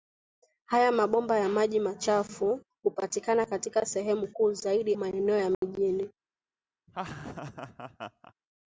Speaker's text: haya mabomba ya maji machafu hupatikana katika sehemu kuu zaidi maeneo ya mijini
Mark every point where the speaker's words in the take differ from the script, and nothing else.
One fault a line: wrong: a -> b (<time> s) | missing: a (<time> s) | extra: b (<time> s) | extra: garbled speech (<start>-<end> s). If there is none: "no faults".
no faults